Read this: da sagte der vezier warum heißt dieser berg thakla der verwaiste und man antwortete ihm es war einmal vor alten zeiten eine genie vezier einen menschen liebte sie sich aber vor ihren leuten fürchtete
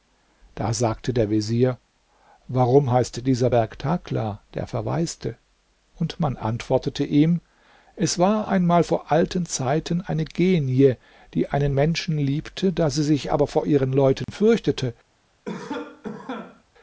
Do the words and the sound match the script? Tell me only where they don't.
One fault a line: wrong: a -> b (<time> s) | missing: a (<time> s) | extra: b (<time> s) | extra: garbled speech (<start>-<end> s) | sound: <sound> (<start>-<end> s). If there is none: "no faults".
wrong: vezier -> die (11.3 s)
extra: da (12.7 s)
sound: dropout (14.2-14.3 s)
sound: cough (15.4-16.6 s)